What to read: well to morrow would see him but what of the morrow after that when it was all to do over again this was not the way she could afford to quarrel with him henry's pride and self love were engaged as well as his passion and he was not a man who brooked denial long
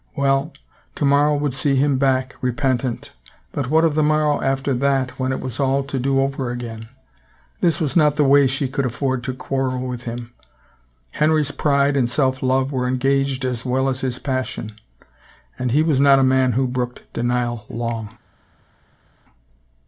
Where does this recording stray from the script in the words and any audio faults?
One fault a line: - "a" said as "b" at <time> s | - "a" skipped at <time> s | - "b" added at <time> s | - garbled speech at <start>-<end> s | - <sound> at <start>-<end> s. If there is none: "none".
- "back repentant" added at 2.0 s